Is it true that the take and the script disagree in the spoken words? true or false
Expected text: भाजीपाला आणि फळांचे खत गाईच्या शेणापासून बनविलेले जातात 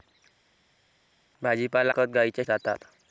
true